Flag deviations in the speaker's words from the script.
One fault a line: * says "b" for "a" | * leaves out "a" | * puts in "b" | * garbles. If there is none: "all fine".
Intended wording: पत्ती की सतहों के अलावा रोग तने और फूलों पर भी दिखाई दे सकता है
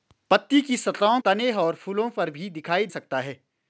* leaves out "के अलावा रोग"
* leaves out "दे"